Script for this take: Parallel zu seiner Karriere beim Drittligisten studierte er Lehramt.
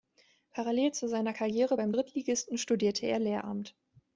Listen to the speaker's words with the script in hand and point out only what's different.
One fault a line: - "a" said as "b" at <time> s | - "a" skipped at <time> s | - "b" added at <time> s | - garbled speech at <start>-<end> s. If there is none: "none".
none